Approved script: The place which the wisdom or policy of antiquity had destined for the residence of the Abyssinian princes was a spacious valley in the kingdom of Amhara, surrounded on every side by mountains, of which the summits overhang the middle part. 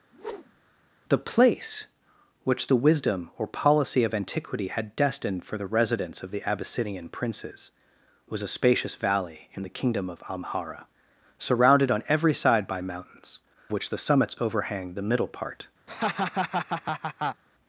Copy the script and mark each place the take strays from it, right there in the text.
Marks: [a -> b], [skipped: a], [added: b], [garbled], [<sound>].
[whoosh] The place which the wisdom or policy of antiquity had destined for the residence of the Abyssinian princes was a spacious valley in the kingdom of Amhara, surrounded on every side by mountains, [skipped: of] which the summits overhang the middle part. [laugh]